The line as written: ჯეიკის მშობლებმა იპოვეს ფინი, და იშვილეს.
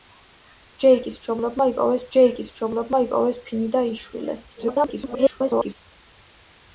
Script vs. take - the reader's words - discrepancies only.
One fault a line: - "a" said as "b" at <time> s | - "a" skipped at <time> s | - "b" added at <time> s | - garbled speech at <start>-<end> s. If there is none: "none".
- "ჯეიკის მშობლებმა იპოვეს" added at 2.2 s
- garbled speech at 4.6-5.7 s